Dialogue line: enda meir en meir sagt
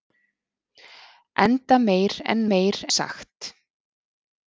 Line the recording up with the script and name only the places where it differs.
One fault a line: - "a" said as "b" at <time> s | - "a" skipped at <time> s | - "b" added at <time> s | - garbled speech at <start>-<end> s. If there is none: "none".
none